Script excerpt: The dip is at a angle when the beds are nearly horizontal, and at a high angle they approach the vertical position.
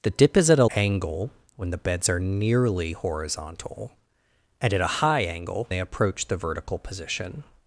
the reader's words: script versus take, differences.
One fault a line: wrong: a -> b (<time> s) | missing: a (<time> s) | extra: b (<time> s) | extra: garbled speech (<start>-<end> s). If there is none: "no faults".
no faults